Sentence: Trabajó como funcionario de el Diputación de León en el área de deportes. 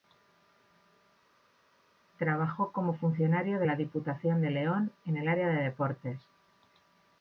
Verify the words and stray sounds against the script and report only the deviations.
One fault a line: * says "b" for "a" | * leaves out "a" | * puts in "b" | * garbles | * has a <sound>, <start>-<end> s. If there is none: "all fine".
* says "la" for "el"